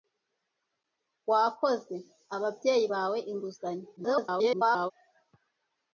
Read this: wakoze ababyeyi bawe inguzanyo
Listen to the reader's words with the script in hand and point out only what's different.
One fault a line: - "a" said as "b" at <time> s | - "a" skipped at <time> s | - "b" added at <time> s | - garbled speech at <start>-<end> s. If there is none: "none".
- garbled speech at 4.0-4.9 s